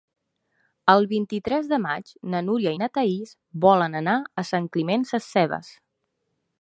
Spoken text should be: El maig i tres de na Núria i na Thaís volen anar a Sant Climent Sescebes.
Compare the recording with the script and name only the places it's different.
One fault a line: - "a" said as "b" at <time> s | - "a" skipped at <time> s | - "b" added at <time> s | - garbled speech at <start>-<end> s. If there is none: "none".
- "maig" said as "vint" at 1.1 s
- "maig" added at 1.8 s